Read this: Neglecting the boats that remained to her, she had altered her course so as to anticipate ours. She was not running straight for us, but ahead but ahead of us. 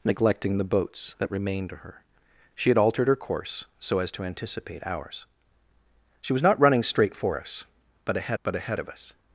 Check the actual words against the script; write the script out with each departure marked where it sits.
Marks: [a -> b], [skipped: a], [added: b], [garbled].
Neglecting the boats that remained to her, she had altered her course so as to anticipate ours. She was not running straight for us, but ahead but ahead of us.